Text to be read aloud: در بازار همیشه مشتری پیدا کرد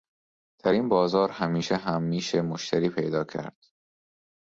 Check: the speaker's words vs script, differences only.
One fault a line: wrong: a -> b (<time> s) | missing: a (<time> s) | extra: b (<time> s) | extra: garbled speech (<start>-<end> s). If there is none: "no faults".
extra: این (0.7 s)
extra: هم میشه (1.8 s)